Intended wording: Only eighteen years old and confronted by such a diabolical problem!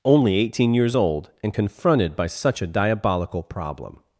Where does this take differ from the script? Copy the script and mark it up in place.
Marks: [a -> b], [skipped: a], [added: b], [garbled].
Only eighteen years old and confronted by such a diabolical problem!